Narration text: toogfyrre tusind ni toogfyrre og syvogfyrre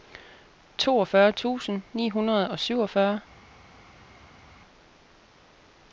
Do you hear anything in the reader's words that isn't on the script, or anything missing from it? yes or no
yes